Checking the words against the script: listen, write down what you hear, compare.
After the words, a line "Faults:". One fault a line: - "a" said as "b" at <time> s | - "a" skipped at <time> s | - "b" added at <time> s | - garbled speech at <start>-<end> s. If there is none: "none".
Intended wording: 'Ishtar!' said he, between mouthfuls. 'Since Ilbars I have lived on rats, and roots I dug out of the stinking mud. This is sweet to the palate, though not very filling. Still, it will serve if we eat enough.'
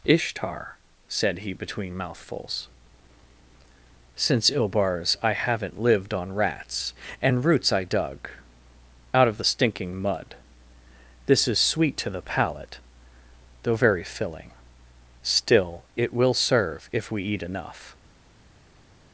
'Ishtar!' said he, between mouthfuls. 'Since Ilbars I haven't lived on rats, and roots I dug out of the stinking mud. This is sweet to the palate, though very filling. Still, it will serve if we eat enough.'
Faults:
- "have" said as "haven't" at 5.3 s
- "not" skipped at 13.8 s